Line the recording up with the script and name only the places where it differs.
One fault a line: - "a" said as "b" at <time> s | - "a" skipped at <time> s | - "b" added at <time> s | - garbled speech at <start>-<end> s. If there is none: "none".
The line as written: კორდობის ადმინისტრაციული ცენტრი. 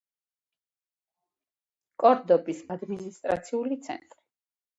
none